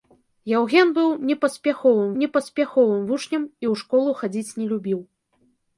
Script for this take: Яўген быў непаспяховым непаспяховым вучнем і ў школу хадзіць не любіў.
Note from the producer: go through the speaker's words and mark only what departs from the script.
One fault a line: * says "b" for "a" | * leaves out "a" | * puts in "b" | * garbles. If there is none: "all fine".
all fine